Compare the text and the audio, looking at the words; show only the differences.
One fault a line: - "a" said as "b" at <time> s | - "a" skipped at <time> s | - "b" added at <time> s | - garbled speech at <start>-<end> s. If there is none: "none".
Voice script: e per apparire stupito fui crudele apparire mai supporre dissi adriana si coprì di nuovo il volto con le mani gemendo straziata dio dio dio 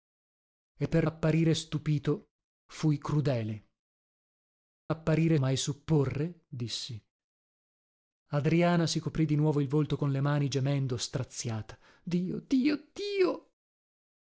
none